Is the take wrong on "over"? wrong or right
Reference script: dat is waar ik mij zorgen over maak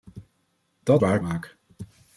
wrong